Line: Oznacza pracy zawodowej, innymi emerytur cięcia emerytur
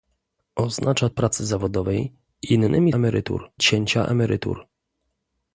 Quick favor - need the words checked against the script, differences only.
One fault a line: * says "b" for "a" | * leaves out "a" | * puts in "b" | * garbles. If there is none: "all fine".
all fine